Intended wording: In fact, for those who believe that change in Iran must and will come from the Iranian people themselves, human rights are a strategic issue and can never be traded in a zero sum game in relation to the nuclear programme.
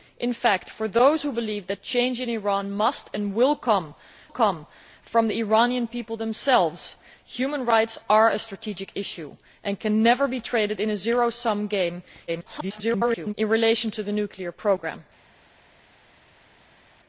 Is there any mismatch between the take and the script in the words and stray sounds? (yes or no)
yes